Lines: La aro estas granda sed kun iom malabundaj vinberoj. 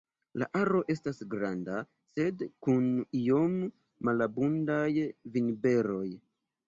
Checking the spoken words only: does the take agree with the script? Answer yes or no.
yes